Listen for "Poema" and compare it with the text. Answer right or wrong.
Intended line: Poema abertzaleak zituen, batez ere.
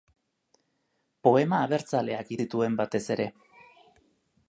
right